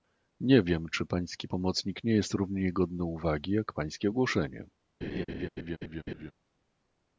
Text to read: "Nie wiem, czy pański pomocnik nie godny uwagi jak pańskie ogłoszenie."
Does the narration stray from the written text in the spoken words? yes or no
yes